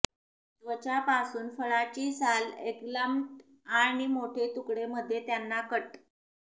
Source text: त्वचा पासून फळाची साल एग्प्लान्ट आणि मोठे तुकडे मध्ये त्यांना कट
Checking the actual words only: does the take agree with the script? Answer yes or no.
yes